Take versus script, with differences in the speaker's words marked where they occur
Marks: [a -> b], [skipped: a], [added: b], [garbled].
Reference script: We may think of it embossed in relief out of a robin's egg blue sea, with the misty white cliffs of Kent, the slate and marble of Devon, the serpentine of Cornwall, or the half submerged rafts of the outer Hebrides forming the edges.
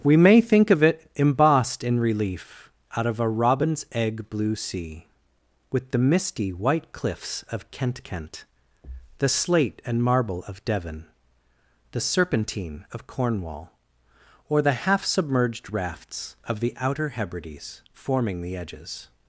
We may think of it embossed in relief out of a robin's egg blue sea, with the misty white cliffs of Kent, [added: Kent] the slate and marble of Devon, the serpentine of Cornwall, or the half submerged rafts of the outer Hebrides forming the edges.